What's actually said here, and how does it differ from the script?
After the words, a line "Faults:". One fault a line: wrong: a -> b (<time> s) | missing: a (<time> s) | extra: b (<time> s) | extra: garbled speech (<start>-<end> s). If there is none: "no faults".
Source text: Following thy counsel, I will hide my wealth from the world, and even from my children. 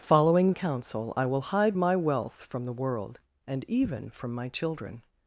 Following counsel, I will hide my wealth from the world, and even from my children.
Faults:
missing: thy (0.5 s)